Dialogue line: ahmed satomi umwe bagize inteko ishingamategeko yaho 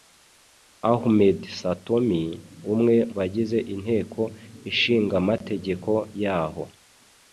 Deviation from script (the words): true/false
false